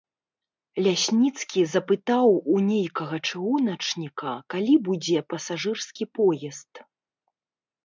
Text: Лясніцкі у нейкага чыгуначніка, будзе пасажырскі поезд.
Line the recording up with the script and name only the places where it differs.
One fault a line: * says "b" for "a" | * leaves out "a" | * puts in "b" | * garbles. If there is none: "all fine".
* puts in "запытаў"
* puts in "калі"